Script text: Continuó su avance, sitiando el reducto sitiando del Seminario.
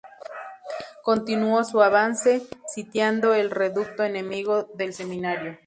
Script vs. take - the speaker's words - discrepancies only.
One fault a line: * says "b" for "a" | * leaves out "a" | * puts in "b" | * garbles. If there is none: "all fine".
* says "enemigo" for "sitiando"